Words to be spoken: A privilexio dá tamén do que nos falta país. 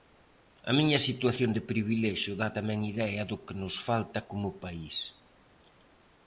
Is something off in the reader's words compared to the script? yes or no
yes